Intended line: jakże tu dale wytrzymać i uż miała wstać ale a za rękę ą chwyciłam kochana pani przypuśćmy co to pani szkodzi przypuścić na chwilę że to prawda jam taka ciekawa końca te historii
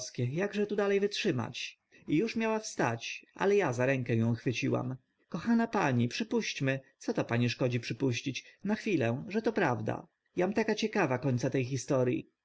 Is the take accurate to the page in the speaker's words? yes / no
yes